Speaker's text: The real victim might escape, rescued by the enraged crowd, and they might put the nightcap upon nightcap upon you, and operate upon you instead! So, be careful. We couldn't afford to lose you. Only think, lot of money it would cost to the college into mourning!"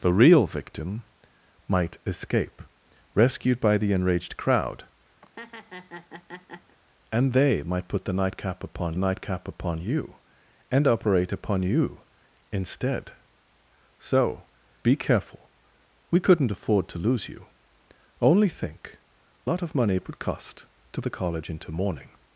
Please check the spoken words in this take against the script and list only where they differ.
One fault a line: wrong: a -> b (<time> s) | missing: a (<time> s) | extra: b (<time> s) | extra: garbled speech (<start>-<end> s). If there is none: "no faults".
no faults